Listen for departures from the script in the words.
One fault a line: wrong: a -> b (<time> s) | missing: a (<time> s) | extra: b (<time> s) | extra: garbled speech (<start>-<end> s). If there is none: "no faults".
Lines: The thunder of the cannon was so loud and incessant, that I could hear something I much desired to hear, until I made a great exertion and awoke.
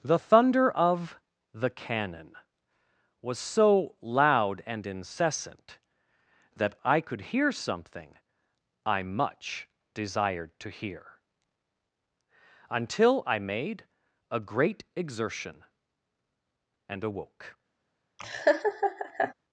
no faults